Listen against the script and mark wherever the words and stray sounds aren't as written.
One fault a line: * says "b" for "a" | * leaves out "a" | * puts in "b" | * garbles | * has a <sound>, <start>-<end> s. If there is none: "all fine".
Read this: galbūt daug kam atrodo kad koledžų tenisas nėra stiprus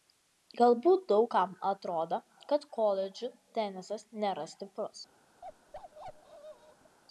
* has a bark, 5.4-7.0 s